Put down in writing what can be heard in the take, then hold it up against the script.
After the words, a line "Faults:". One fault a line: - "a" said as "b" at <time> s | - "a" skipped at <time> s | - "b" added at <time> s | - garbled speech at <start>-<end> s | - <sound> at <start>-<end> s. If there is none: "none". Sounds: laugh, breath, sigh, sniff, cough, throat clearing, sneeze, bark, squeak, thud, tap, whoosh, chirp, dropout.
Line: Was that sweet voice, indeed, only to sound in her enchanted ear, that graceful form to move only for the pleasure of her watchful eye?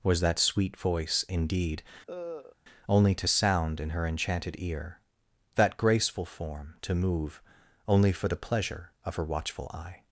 Was that sweet voice, indeed, only to sound in her enchanted ear, that graceful form to move only for the pleasure of her watchful eye?
Faults:
- cough at 2.1-2.6 s